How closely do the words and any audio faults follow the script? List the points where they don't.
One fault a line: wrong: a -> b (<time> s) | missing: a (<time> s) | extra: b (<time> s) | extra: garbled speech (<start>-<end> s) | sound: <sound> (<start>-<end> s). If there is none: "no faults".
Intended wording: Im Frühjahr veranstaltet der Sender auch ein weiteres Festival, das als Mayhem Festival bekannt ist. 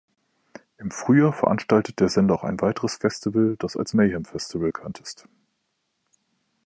no faults